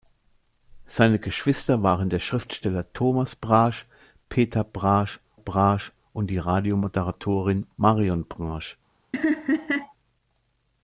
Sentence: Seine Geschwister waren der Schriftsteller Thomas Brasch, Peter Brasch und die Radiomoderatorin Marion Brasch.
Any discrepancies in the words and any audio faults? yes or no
yes